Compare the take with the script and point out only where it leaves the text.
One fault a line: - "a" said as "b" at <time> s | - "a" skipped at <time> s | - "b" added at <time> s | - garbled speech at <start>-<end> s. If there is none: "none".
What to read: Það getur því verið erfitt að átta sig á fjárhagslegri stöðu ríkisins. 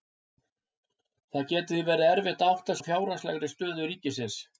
- "sig" skipped at 2.8 s